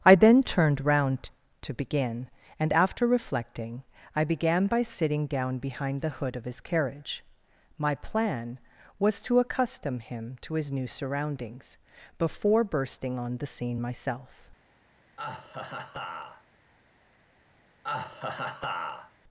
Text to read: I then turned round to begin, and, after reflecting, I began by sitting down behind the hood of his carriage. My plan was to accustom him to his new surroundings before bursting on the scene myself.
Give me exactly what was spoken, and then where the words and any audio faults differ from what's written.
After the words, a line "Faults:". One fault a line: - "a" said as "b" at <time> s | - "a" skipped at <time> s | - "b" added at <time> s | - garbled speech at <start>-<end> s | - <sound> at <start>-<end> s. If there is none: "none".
I then turned round to begin, and, after reflecting, I began by sitting down behind the hood of his carriage. My plan was to accustom him to his new surroundings before bursting on the scene myself.
Faults:
- laugh at 15.2-16.5 s
- laugh at 17.8-19.1 s